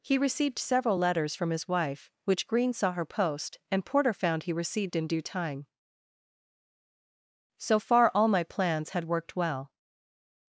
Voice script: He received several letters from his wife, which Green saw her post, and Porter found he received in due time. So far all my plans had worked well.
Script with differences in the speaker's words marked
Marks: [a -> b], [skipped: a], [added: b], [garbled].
He received several letters from his wife, which Green saw her post, and Porter found he received in due time. So far all my plans had worked well.